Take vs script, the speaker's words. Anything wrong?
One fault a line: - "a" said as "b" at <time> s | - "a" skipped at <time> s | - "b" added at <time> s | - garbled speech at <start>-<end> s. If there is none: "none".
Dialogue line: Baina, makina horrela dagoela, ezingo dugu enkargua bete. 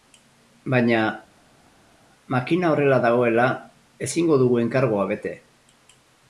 none